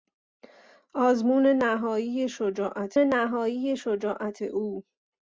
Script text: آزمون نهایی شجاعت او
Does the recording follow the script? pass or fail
fail